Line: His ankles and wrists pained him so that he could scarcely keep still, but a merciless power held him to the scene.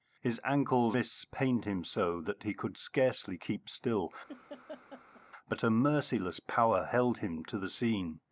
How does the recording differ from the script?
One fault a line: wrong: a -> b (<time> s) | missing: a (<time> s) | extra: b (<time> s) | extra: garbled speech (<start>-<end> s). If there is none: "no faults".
missing: and (1.0 s)